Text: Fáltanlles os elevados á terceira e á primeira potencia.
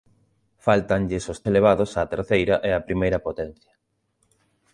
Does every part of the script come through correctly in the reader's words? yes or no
yes